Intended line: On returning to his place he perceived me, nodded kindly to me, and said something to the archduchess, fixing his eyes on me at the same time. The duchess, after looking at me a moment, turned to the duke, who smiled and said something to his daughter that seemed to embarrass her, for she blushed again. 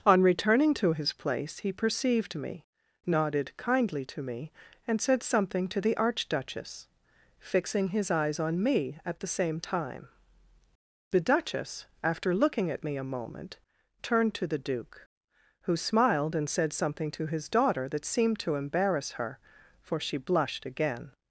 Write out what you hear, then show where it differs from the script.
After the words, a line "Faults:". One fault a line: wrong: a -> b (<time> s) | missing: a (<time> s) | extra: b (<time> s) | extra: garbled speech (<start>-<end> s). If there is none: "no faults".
On returning to his place he perceived me, nodded kindly to me, and said something to the archduchess, fixing his eyes on me at the same time. The duchess, after looking at me a moment, turned to the duke, who smiled and said something to his daughter that seemed to embarrass her, for she blushed again.
Faults:
no faults